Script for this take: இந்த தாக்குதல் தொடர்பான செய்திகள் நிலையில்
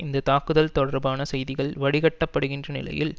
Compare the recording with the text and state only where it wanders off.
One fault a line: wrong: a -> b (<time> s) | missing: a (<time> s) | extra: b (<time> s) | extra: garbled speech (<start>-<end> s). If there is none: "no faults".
extra: வடிகட்டப்படுகின்ற (1.8 s)